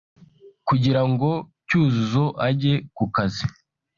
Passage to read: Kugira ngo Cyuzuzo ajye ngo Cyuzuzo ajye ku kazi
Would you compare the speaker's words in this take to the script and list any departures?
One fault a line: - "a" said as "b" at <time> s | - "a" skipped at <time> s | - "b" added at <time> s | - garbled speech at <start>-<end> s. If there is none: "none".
- "ngo Cyuzuzo ajye" skipped at 2.7 s